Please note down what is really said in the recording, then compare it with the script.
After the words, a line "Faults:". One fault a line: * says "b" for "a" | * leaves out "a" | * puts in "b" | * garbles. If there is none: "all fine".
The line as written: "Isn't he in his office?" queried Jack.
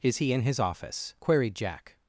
"Is he in his office?" queried Jack.
Faults:
* says "Is" for "Isn't"